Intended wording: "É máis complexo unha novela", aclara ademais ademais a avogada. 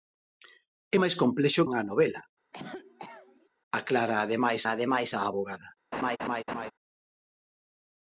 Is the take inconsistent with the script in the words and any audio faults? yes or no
yes